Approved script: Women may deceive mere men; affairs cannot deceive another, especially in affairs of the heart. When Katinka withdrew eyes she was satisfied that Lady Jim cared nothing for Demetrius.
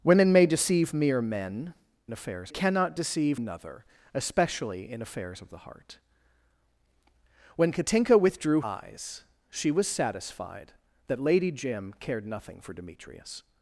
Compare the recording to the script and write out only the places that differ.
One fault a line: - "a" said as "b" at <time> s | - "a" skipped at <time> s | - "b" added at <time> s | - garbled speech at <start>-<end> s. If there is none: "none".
none